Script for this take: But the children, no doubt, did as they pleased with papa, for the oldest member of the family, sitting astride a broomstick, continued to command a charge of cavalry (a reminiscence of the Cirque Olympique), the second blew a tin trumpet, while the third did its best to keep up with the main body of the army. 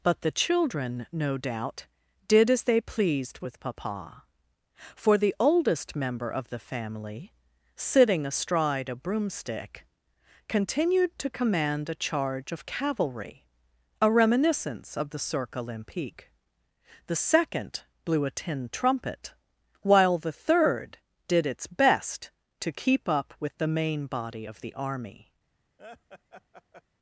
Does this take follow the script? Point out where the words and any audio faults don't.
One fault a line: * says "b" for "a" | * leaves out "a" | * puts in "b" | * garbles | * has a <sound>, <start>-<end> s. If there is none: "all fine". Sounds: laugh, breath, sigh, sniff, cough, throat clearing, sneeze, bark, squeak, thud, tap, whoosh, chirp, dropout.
* has a laugh, 25.8-26.8 s